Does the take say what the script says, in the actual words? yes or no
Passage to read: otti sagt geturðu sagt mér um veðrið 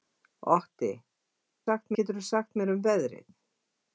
yes